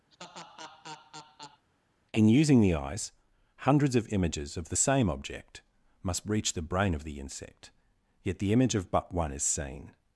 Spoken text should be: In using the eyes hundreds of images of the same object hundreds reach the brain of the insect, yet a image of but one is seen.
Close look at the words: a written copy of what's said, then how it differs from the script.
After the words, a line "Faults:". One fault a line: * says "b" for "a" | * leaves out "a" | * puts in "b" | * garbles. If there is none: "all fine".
In using the eyes hundreds of images of the same object must reach the brain of the insect, yet the image of but one is seen.
Faults:
* says "must" for "hundreds"
* says "the" for "a"